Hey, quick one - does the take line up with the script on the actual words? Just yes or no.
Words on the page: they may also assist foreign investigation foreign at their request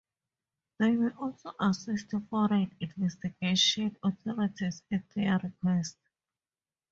no